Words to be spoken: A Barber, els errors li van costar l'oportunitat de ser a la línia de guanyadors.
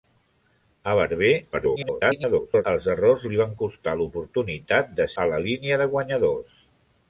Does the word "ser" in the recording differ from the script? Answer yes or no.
yes